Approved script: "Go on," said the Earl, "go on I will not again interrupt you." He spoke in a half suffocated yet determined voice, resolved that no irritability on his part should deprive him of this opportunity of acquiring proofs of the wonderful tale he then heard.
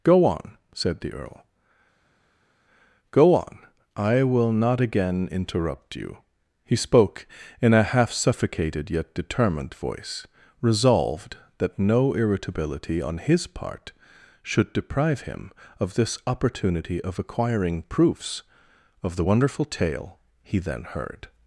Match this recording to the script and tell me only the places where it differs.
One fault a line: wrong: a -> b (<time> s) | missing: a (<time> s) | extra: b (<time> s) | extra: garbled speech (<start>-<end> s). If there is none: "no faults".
no faults